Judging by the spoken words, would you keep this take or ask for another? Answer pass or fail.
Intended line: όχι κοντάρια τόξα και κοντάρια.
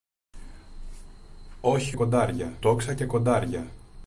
pass